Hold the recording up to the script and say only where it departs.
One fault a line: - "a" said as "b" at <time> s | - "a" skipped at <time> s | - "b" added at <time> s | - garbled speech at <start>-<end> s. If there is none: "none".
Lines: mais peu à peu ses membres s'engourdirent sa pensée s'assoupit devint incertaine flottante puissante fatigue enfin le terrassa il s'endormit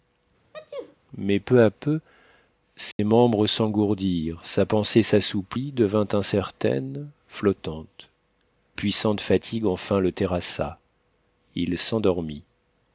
none